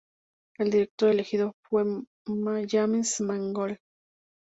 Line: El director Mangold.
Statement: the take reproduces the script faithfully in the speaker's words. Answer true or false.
false